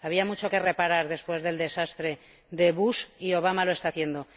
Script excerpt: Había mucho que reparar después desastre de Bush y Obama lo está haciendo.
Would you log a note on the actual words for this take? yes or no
yes